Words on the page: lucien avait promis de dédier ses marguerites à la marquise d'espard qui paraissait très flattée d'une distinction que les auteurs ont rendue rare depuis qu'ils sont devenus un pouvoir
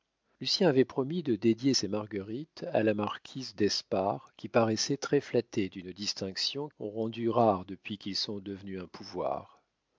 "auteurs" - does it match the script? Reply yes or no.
no